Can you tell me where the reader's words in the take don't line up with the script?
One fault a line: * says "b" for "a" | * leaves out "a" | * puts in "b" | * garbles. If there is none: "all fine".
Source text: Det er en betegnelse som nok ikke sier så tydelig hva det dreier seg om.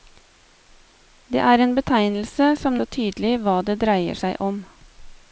* leaves out "nok ikke sier"